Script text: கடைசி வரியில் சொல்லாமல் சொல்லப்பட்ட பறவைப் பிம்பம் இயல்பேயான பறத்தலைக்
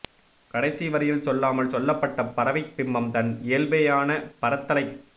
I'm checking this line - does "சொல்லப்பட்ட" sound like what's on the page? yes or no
yes